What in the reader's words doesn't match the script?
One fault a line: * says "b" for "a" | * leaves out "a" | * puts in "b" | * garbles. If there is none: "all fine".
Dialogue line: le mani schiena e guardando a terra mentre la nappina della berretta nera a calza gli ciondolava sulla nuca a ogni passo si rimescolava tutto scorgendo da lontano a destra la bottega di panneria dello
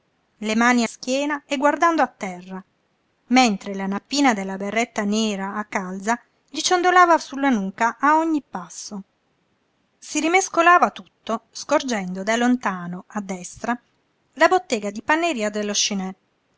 all fine